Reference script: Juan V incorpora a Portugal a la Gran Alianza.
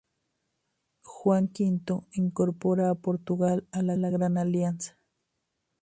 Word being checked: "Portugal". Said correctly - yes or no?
yes